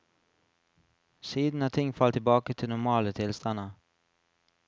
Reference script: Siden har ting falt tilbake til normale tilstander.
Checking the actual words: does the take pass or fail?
pass